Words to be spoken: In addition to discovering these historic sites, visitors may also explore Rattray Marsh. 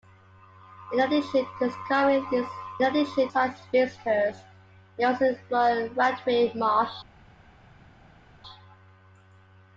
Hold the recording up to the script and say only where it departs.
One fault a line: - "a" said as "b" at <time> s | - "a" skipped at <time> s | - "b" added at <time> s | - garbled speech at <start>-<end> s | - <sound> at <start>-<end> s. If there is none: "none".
- "historic" said as "addition" at 2.8 s